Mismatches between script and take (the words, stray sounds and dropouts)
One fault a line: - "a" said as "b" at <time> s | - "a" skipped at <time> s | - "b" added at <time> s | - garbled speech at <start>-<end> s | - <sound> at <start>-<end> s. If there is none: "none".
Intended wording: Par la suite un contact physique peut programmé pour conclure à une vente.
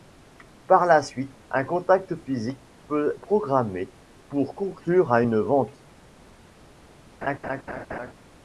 - laugh at 7.2-8.1 s